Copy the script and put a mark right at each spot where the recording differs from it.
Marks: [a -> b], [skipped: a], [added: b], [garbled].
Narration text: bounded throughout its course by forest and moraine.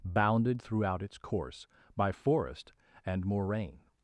bounded throughout its course by forest and moraine.